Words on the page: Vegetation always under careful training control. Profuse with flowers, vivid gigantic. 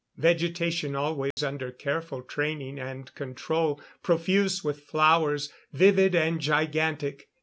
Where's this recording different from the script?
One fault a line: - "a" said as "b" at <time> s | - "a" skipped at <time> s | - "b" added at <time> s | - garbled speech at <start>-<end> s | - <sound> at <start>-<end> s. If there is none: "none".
- dropout at 1.3-1.4 s
- "and" added at 2.8 s
- "and" added at 6.2 s